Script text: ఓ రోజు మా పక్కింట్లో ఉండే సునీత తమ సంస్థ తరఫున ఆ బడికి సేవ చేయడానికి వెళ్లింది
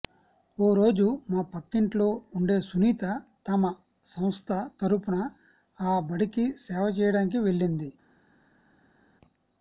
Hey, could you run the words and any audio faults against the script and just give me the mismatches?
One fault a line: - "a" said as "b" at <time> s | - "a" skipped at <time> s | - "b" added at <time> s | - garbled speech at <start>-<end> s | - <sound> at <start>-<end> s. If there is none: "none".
none